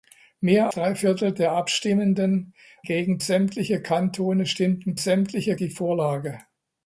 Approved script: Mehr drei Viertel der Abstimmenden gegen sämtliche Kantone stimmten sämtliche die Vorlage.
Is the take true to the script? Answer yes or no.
yes